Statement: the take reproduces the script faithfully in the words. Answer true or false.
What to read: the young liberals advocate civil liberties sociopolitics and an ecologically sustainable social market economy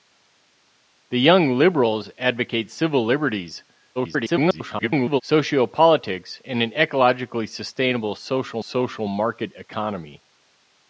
false